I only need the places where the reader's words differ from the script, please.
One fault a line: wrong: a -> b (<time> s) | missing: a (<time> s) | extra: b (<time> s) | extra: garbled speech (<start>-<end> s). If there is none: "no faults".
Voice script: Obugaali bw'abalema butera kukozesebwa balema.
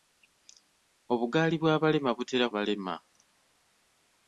missing: kukozesebwa (2.5 s)